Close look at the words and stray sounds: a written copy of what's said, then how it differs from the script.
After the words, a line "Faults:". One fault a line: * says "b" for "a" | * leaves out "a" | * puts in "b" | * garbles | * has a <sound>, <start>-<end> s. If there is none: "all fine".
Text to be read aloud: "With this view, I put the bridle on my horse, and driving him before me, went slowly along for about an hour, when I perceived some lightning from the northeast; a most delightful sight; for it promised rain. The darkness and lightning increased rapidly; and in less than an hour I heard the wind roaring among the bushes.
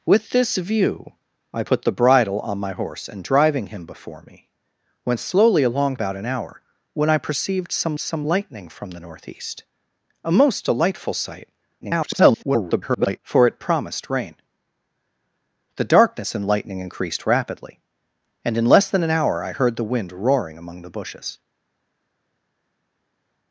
"With this view, I put the bridle on my horse, and driving him before me, went slowly along about an hour, when I perceived some some lightning from the northeast; a most delightful sight; [garbled] for it promised rain. The darkness and lightning increased rapidly; and in less than an hour I heard the wind roaring among the bushes.
Faults:
* leaves out "for"
* puts in "some"
* garbles